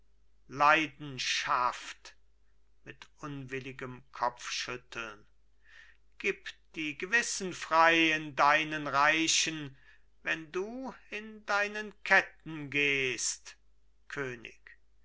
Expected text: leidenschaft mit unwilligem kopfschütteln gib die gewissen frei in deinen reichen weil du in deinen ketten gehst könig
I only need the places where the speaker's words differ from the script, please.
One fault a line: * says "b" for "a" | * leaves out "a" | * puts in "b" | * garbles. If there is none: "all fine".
* says "wenn" for "weil"